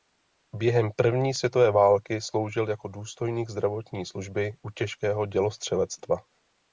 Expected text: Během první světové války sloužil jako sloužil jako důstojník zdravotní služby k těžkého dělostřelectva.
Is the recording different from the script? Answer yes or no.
yes